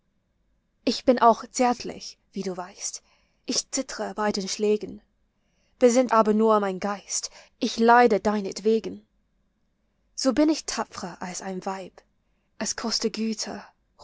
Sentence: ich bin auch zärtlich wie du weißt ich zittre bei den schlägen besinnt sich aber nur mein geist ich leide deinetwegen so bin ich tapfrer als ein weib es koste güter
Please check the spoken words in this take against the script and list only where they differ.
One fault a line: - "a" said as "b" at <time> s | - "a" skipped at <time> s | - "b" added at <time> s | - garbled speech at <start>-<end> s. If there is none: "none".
- "sich" skipped at 6.1 s